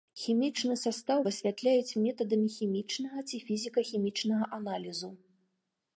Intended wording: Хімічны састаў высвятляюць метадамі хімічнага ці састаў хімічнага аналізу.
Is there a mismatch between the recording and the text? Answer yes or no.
yes